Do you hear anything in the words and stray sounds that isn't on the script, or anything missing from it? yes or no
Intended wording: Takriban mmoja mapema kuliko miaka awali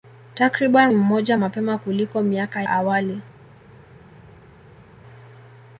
no